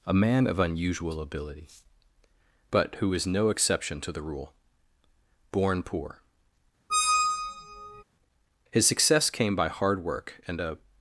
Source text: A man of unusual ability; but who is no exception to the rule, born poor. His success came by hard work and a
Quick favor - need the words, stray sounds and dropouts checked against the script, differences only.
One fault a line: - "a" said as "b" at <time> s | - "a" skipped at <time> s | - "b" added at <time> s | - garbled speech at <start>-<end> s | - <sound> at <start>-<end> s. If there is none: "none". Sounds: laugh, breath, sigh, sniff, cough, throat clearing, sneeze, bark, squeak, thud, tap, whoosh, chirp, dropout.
- squeak at 6.9-8.0 s